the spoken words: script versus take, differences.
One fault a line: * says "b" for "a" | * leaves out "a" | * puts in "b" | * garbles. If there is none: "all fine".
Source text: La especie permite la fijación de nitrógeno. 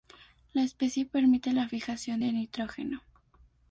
all fine